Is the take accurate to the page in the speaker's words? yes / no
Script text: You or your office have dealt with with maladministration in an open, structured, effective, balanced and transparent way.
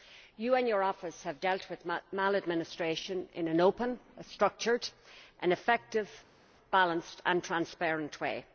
no